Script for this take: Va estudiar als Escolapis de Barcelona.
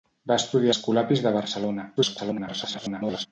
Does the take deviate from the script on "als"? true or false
true